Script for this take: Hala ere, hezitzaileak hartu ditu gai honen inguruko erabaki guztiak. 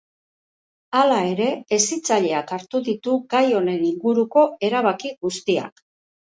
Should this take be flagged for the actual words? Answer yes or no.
no